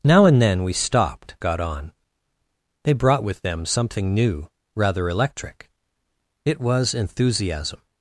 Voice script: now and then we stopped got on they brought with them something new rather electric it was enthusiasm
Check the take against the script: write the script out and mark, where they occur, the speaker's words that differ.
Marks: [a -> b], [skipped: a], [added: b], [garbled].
now and then we stopped got on they brought with them something new rather electric it was enthusiasm